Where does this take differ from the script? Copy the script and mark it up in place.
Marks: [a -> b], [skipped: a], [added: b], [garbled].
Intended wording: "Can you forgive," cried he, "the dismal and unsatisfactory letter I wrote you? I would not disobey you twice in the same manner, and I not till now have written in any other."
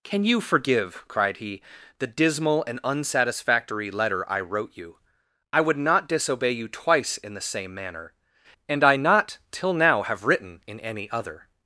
"Can you forgive," cried he, "the dismal and unsatisfactory letter I wrote you? I would not disobey you twice in the same manner, and I not till now have written in any other."